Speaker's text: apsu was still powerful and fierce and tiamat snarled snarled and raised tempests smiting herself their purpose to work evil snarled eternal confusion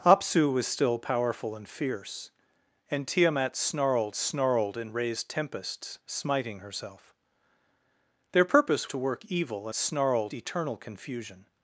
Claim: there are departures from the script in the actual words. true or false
false